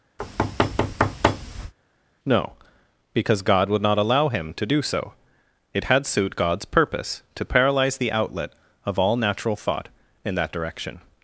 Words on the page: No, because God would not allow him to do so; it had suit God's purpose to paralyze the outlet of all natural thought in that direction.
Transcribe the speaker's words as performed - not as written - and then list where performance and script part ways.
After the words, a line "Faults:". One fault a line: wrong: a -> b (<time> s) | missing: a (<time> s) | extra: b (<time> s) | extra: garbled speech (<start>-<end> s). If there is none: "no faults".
No, because God would not allow him to do so; it had suit God's purpose to paralyze the outlet of all natural thought in that direction.
Faults:
no faults